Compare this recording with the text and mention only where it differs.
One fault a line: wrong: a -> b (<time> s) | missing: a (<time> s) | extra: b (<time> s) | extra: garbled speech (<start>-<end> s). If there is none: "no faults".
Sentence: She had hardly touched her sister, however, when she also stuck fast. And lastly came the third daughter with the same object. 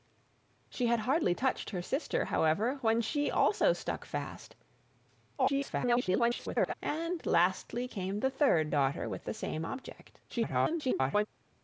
extra: garbled speech (5.4-6.7 s)
extra: garbled speech (10.3-11.3 s)